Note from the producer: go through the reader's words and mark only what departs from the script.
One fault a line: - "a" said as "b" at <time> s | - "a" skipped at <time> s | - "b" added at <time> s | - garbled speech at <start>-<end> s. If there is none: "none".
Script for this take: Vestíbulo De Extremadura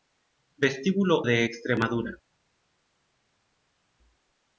none